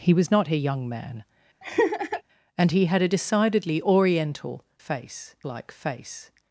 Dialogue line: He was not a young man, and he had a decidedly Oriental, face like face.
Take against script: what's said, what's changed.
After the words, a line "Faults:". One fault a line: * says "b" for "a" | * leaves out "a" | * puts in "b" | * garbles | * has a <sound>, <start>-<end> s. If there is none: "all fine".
He was not a young man, and he had a decidedly Oriental, face like face.
Faults:
* has a laugh, 1.6-2.2 s